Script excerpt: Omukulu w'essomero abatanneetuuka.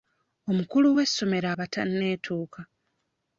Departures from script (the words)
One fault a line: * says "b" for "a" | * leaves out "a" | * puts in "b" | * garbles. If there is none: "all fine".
all fine